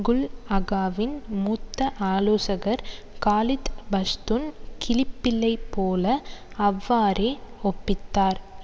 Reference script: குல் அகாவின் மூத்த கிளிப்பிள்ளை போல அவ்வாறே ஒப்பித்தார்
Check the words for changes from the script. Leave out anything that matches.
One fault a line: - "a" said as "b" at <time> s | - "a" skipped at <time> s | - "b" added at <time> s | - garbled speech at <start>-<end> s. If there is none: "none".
- "ஆலோசகர் காலித் பஷ்துன்" added at 2.1 s